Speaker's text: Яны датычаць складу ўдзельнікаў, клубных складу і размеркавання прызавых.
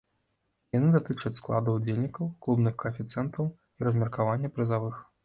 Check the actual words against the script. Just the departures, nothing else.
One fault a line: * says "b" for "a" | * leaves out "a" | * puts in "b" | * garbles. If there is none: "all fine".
* says "каэфіцыентаў" for "складу"